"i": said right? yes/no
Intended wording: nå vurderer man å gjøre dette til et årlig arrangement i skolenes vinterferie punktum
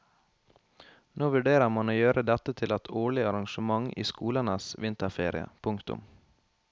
yes